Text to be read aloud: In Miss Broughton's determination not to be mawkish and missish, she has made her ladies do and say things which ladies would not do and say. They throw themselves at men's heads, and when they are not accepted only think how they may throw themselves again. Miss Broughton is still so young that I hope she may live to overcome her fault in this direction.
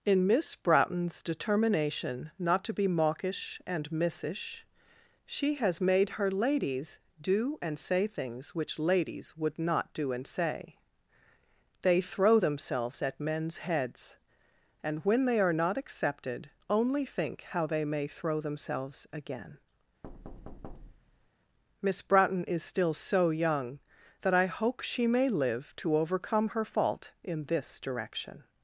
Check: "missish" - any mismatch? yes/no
no